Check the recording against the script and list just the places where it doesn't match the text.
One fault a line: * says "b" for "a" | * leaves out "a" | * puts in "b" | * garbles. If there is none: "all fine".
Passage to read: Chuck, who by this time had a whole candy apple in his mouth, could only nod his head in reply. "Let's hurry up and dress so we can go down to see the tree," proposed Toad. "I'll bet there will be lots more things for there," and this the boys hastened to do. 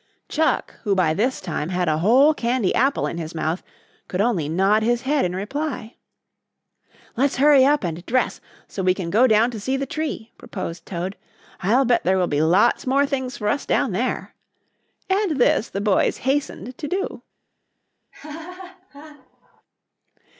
* puts in "us down"